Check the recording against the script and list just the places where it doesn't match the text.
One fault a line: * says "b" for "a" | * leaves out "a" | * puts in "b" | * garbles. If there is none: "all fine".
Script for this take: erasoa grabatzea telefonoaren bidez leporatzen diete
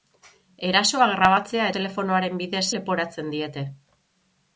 all fine